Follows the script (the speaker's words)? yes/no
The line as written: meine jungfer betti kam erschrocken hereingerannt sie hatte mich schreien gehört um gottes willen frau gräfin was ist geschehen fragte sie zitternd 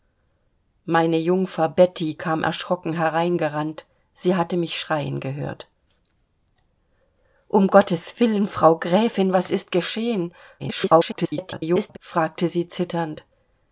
no